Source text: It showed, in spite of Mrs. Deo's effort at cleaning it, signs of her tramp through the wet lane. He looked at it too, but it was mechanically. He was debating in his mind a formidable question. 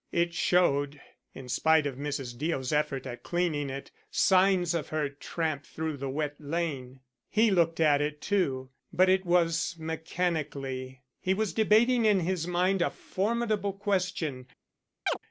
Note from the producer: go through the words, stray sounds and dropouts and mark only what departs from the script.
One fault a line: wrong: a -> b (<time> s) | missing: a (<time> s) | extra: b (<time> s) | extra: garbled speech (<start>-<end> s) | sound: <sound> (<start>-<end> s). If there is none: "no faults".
sound: chirp (15.1-15.2 s)